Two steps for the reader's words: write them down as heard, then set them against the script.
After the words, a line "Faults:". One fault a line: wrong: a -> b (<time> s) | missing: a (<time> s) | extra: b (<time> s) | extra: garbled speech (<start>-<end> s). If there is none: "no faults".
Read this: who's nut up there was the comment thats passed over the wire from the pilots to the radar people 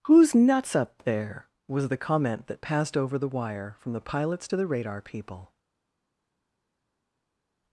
who's nuts up there was the comment that passed over the wire from the pilots to the radar people
Faults:
wrong: nut -> nuts (0.3 s)
wrong: thats -> that (2.5 s)